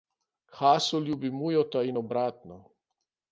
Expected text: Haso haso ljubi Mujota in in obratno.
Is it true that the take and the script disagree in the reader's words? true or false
true